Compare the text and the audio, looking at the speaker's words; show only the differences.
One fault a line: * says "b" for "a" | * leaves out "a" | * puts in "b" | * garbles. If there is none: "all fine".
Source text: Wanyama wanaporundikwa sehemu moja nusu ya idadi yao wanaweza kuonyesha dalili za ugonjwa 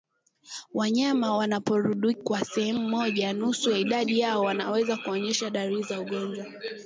all fine